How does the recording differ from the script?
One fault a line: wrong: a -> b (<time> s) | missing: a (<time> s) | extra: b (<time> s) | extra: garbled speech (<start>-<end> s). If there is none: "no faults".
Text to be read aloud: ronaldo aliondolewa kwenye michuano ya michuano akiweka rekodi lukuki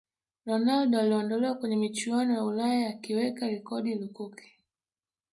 wrong: michuano -> ulaya (2.4 s)